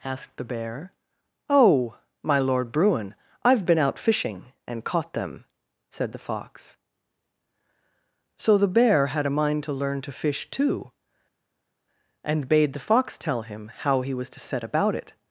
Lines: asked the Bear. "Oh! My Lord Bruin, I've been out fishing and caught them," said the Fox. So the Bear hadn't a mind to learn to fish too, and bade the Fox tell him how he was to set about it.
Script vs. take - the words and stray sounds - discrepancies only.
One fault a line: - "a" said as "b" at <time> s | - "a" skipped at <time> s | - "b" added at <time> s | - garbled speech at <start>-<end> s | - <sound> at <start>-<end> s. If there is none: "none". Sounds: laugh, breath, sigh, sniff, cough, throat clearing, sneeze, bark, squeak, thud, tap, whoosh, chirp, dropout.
- "hadn't" said as "had" at 9.1 s